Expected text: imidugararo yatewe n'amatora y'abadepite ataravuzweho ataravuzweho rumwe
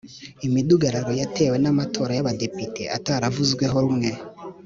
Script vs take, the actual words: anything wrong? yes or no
yes